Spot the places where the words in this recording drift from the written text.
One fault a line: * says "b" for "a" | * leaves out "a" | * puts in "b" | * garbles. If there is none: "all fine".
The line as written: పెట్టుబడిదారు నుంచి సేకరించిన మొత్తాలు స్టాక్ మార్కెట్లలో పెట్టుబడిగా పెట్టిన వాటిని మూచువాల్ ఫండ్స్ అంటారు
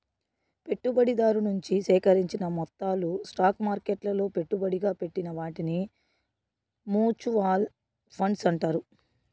all fine